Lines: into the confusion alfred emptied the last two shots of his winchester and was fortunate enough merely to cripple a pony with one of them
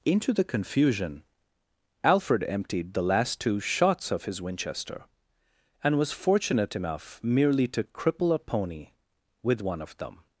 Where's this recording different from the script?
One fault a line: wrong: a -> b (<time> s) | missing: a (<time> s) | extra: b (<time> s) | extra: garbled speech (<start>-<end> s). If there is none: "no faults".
no faults